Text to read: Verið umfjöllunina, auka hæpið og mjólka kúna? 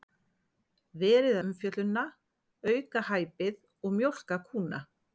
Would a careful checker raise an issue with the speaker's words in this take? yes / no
no